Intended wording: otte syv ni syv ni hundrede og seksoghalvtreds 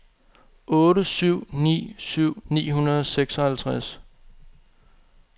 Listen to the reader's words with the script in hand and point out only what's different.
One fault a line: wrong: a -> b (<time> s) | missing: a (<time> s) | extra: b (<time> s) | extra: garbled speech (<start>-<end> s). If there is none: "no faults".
no faults